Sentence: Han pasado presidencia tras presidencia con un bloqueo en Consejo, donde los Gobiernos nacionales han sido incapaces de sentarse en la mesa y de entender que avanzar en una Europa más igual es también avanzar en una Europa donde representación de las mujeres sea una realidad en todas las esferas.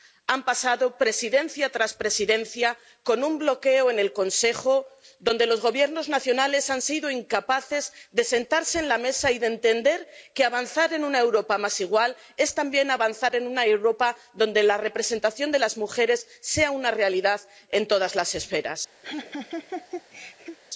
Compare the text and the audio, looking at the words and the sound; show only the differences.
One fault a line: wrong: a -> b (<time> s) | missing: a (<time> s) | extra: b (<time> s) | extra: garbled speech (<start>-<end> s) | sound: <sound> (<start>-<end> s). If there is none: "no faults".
extra: el (4.0 s)
extra: la (14.6 s)
sound: laugh (19.0-20.6 s)